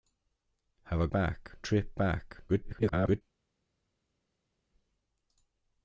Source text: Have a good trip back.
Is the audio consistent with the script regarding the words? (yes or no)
no